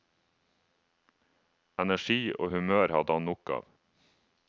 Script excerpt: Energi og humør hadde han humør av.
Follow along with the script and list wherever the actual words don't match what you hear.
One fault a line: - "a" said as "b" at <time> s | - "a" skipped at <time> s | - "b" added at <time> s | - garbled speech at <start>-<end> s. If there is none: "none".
- "humør" said as "nok" at 3.3 s